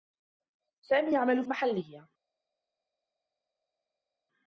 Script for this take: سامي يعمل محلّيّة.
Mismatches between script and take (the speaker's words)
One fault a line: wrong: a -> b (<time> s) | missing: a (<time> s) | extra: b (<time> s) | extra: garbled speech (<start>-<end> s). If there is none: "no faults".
no faults